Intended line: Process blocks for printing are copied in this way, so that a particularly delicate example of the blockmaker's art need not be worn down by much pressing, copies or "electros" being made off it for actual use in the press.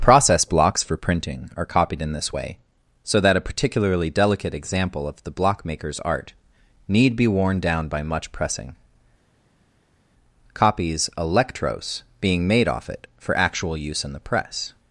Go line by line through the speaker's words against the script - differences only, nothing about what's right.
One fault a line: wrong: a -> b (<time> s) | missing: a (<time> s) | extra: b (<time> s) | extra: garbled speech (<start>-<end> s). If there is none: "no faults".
missing: not (7.2 s)
missing: or (11.1 s)